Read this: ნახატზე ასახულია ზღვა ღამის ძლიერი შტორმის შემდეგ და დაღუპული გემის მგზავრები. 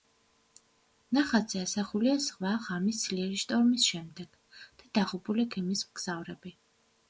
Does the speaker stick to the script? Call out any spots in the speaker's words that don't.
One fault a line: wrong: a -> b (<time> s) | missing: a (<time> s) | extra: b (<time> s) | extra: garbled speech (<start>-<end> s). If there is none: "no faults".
no faults